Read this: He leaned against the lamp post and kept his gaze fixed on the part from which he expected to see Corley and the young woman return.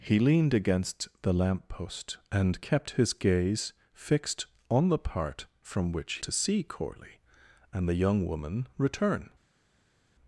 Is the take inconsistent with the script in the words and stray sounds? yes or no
yes